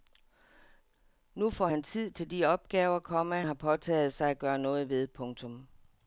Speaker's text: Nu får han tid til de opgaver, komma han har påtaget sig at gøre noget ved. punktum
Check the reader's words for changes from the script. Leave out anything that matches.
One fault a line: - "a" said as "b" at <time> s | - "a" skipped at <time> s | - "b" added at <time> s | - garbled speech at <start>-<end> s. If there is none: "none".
- "han" skipped at 3.4 s